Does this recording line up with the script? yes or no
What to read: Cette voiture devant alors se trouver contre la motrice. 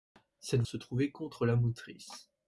no